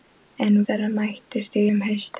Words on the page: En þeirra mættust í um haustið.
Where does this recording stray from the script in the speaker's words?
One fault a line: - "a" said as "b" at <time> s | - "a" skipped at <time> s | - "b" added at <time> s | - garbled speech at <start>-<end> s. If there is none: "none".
none